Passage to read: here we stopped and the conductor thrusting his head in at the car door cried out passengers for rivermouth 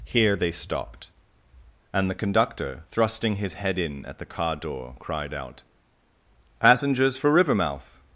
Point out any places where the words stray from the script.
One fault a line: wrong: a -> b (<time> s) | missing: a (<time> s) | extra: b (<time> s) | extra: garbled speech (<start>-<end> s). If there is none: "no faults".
wrong: we -> they (0.3 s)